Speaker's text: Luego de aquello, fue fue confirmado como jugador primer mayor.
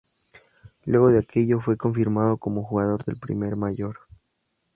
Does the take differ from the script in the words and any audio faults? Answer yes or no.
yes